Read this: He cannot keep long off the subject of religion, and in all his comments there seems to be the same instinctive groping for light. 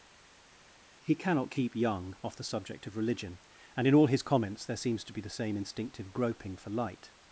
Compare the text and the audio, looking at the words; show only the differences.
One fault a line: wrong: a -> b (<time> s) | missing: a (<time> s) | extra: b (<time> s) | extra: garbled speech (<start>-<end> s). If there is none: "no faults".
wrong: long -> young (1.8 s)